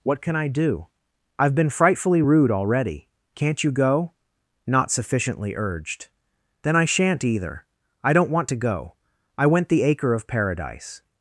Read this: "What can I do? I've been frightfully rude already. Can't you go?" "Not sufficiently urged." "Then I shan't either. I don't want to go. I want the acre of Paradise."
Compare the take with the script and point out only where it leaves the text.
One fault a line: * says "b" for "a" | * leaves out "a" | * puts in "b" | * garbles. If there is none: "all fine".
* says "went" for "want"